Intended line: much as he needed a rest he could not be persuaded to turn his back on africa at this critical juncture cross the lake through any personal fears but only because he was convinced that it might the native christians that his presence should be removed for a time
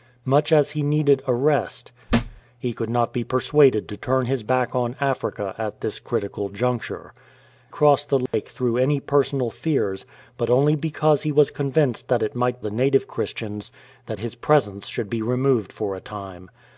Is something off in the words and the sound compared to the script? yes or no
yes